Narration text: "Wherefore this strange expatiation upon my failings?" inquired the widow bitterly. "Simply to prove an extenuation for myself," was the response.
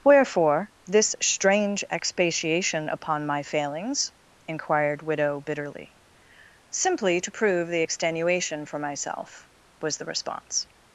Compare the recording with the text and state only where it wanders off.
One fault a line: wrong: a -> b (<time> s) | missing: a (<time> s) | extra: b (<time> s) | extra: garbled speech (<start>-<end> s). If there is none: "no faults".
missing: the (5.0 s)
wrong: an -> the (7.7 s)